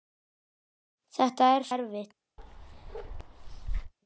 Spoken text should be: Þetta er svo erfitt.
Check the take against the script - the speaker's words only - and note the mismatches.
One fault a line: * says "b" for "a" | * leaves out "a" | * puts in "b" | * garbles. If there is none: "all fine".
* leaves out "svo"